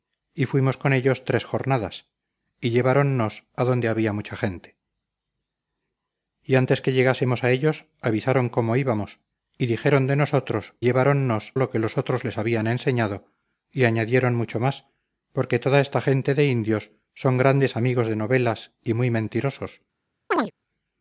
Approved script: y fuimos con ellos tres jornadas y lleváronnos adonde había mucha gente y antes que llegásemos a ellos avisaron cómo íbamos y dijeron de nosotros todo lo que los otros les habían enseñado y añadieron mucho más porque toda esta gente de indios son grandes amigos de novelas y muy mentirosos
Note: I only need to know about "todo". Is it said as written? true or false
false